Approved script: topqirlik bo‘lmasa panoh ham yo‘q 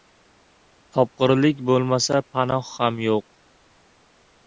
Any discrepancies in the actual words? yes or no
no